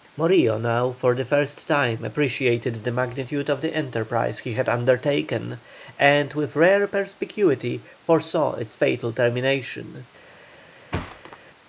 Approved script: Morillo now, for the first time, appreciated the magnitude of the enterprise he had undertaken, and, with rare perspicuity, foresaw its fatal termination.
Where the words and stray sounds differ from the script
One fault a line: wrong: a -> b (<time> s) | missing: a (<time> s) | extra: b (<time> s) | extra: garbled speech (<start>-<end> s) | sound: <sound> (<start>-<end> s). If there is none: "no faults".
sound: thud (10.9-11.4 s)